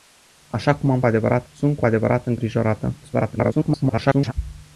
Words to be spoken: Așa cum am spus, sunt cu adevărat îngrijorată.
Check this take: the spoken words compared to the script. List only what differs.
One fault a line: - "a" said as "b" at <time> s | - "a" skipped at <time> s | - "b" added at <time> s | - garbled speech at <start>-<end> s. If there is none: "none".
- "spus" said as "adevărat" at 1.0 s
- garbled speech at 3.0-4.3 s